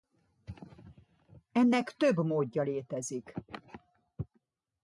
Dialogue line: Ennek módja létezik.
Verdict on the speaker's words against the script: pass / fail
fail